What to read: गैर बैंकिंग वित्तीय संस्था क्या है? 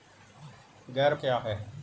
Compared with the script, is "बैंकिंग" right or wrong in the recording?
wrong